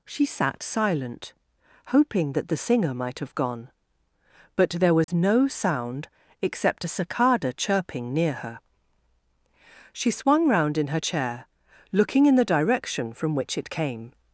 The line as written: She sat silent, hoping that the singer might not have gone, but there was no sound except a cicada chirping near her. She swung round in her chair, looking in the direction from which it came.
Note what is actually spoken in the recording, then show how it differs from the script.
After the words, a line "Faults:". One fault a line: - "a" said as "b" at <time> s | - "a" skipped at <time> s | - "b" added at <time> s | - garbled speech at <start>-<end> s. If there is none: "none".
She sat silent, hoping that the singer might have gone, but there was no sound except a cicada chirping near her. She swung round in her chair, looking in the direction from which it came.
Faults:
- "not" skipped at 3.2 s